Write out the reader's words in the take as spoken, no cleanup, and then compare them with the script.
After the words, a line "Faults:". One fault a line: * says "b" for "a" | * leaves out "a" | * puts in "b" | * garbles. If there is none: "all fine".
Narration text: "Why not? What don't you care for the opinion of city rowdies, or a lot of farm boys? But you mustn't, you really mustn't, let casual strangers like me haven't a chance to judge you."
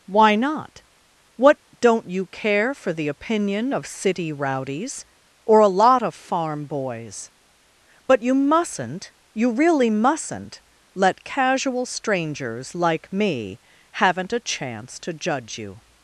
"Why not? What don't you care for the opinion of city rowdies, or a lot of farm boys? But you mustn't, you really mustn't, let casual strangers like me haven't a chance to judge you."
Faults:
all fine